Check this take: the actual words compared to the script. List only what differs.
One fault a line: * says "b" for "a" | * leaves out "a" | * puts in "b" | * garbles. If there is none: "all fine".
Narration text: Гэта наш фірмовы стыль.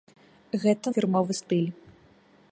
* leaves out "наш"